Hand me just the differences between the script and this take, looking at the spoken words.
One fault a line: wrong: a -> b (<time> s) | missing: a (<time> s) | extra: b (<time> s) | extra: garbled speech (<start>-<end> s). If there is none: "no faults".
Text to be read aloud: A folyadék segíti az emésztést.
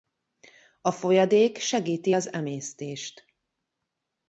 no faults